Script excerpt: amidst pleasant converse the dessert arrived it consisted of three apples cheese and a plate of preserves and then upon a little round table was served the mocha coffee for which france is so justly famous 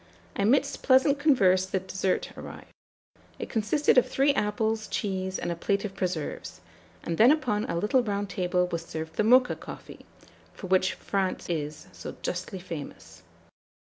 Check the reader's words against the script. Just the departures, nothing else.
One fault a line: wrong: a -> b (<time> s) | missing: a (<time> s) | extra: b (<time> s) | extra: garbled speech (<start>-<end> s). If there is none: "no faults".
no faults